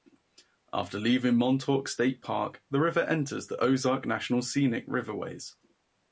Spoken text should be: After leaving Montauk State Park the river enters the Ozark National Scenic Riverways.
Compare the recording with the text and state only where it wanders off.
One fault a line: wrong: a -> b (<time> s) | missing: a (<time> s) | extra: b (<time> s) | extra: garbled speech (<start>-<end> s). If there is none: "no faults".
no faults